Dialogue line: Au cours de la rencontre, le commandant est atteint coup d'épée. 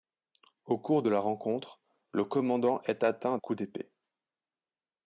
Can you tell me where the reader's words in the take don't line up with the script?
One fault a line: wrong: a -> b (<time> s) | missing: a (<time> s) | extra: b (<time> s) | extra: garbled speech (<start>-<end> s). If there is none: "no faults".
no faults